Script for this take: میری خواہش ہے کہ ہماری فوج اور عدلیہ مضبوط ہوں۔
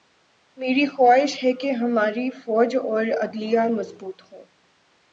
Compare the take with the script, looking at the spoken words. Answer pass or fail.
pass